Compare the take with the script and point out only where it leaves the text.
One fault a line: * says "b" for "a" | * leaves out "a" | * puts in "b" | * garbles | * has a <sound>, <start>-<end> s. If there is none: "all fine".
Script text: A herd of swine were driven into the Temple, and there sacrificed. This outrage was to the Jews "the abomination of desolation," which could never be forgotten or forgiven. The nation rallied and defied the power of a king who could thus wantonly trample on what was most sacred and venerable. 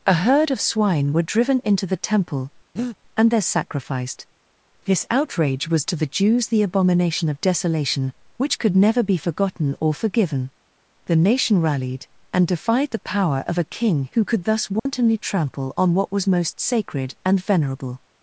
* has a breath, 2.8-3.0 s
* has a dropout, 14.8-14.9 s